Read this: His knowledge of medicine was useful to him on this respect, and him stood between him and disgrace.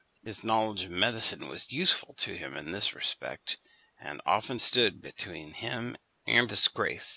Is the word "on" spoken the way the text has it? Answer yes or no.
no